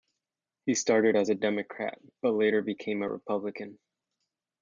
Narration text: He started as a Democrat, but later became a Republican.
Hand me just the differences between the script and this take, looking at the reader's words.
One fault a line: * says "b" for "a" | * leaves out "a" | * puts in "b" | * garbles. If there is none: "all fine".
all fine